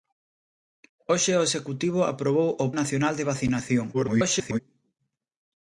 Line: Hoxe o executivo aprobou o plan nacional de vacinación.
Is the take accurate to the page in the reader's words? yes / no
no